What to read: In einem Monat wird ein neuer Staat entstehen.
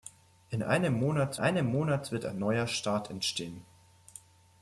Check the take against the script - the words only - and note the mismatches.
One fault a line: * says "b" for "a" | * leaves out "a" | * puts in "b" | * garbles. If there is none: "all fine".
* puts in "einem Monat"